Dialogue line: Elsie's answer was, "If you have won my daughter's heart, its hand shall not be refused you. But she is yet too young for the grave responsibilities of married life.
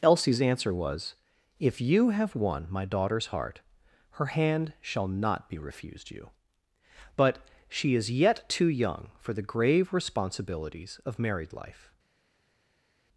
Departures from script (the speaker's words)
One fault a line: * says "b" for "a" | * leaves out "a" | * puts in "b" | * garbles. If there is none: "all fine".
* says "her" for "its"